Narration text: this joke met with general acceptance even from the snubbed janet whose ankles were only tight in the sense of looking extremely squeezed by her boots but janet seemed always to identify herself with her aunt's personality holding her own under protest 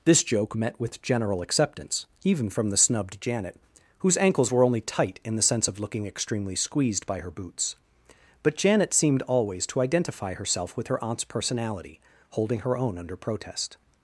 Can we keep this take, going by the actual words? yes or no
yes